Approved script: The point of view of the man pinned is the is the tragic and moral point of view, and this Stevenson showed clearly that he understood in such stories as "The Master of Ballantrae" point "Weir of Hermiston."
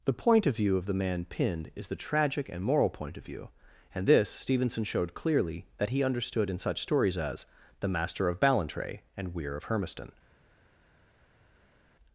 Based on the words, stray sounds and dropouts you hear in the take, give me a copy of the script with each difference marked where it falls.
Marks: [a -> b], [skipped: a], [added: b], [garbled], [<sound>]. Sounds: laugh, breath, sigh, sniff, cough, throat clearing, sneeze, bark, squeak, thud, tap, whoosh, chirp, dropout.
The point of view of the man pinned is the [skipped: is the] tragic and moral point of view, and this Stevenson showed clearly that he understood in such stories as "The Master of Ballantrae" [point -> and] "Weir of Hermiston."